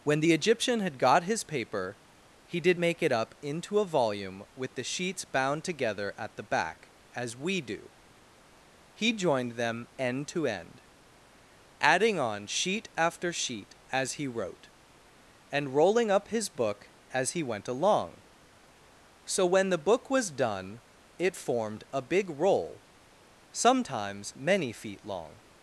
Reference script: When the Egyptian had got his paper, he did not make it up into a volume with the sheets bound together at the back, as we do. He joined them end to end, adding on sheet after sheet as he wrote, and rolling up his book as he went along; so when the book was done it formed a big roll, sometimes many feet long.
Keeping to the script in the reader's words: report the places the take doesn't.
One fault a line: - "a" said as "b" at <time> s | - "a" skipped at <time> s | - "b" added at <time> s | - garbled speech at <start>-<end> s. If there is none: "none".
- "not" skipped at 2.8 s